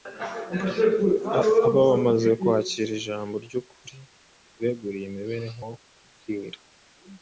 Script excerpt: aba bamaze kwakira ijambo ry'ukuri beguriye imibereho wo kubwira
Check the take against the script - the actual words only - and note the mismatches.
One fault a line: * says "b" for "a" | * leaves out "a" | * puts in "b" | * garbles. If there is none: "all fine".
all fine